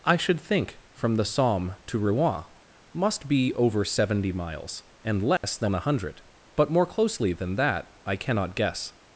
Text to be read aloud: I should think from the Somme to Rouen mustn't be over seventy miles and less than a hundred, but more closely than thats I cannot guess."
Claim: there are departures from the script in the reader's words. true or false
true